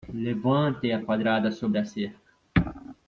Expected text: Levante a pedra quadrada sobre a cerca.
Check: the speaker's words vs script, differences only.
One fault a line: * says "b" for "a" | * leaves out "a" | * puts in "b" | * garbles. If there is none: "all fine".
* leaves out "pedra"